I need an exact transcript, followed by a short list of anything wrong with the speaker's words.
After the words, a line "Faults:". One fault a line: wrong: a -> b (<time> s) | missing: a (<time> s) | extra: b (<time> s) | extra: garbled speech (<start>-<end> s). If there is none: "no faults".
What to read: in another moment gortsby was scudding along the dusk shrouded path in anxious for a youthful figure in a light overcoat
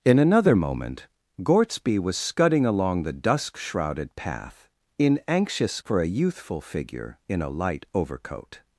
in another moment gortsby was scudding along the dusk shrouded path in anxious for a youthful figure in a light overcoat
Faults:
no faults